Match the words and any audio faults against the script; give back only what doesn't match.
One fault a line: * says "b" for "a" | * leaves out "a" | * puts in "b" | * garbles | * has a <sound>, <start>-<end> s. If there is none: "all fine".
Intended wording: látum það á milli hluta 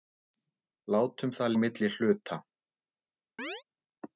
* has a chirp, 3.4-3.6 s